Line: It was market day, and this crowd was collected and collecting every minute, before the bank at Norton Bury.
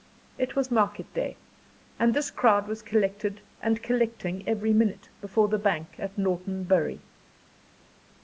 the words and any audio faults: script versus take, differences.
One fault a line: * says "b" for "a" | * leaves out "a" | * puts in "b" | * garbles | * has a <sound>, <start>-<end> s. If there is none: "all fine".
all fine